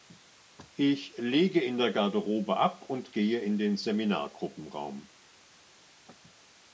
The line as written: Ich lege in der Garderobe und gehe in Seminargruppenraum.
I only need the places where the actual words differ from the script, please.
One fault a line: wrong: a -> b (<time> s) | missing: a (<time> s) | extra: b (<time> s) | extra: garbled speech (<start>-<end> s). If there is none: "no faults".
extra: ab (2.6 s)
extra: den (3.6 s)